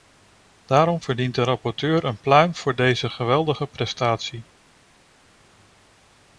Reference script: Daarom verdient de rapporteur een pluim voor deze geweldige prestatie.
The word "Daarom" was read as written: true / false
true